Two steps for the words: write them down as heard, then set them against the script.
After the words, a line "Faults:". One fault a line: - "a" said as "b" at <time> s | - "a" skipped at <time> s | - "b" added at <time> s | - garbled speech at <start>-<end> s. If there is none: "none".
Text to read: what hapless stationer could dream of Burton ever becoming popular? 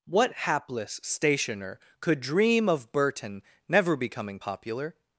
what hapless stationer could dream of Burton never becoming popular?
Faults:
- "ever" said as "never" at 3.7 s